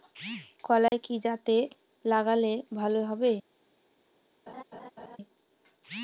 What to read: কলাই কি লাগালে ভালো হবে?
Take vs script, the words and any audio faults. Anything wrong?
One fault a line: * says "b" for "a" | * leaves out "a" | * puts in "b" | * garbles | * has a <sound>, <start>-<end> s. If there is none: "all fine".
* has a dropout, 0.9-0.9 s
* puts in "জাতে"
* has a laugh, 4.5-5.2 s